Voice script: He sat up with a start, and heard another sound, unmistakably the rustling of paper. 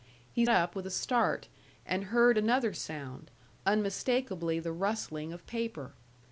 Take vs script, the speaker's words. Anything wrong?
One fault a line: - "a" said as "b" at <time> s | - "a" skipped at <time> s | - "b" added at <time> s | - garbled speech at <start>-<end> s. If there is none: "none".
- "sat" skipped at 0.5 s